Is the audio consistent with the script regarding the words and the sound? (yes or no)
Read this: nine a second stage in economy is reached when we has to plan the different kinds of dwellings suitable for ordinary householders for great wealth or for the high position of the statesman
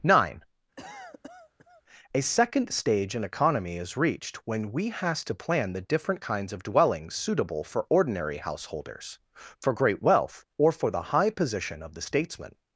no